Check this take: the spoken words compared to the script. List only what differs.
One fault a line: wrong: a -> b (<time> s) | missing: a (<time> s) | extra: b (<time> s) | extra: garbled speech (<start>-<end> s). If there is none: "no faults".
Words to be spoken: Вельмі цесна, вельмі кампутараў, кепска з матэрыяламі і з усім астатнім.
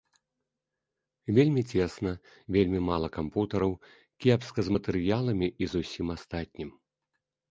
extra: мала (2.9 s)